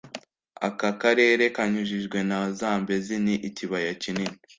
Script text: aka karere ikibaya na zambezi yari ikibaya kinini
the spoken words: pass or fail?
fail